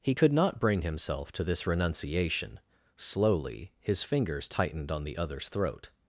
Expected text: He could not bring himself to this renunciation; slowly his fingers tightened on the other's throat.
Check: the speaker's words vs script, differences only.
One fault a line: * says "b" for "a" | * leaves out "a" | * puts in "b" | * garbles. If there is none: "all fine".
all fine